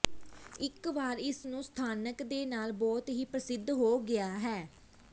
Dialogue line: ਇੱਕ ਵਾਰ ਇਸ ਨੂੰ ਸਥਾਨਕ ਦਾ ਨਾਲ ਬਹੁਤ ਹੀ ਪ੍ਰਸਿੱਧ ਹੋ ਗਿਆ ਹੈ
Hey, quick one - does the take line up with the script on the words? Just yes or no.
no